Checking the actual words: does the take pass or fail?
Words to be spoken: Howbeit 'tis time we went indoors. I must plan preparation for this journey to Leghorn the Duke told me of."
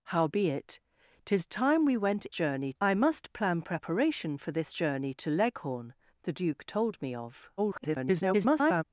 fail